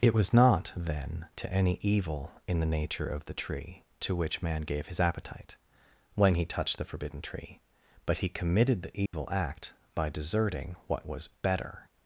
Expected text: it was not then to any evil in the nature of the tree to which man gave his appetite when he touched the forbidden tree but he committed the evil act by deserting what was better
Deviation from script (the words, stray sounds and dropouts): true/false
true